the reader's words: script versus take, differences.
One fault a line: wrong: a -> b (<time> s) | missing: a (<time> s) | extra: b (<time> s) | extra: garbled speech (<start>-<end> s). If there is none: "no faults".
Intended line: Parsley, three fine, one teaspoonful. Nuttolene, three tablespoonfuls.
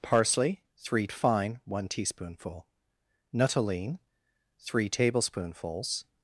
no faults